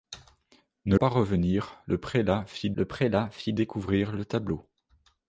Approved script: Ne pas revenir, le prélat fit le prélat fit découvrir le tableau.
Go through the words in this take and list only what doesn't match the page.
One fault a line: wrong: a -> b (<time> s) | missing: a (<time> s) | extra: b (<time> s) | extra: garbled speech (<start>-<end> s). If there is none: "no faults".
no faults